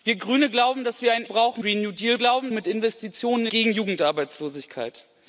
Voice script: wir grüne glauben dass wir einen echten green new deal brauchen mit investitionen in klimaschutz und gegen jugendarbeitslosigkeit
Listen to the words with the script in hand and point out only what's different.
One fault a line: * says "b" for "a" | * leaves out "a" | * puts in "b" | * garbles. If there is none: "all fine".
* says "brauchen" for "echten"
* says "glauben" for "brauchen"
* leaves out "in klimaschutz und"